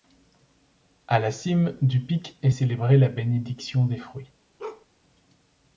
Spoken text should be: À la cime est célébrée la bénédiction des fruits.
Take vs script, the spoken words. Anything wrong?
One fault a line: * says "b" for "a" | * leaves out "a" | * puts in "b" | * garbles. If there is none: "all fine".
* puts in "du pic"